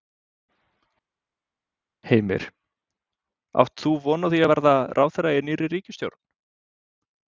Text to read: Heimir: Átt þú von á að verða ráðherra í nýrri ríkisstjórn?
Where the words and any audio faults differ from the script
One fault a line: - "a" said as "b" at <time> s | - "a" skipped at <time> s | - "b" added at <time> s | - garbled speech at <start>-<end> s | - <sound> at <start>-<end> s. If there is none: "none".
- "því" added at 4.3 s